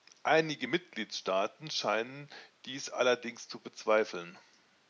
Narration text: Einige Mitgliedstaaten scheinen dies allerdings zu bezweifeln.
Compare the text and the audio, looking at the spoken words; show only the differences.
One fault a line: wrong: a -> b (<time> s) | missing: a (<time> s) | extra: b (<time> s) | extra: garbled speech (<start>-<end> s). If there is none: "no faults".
no faults